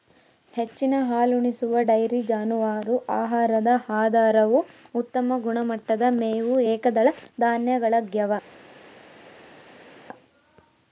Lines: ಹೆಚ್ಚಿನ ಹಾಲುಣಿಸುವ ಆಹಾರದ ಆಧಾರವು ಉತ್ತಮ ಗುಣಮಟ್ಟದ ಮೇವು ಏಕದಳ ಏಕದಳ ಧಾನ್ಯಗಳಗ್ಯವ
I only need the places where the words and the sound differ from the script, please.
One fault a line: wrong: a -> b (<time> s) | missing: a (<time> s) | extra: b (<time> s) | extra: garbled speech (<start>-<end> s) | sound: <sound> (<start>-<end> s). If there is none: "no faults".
extra: ಡೈರಿ ಜಾನುವಾರು (1.9 s)
missing: ಏಕದಳ (7.1 s)